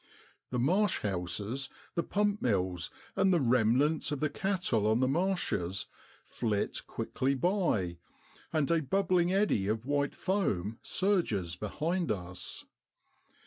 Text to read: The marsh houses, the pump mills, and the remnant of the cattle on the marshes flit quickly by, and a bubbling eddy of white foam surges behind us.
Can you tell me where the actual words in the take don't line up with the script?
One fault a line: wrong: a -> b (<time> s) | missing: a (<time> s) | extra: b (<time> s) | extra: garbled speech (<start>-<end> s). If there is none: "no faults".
no faults